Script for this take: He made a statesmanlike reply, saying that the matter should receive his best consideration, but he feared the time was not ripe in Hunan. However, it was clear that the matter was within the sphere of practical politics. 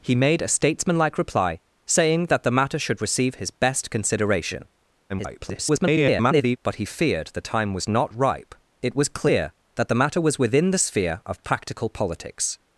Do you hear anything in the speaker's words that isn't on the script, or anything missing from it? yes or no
yes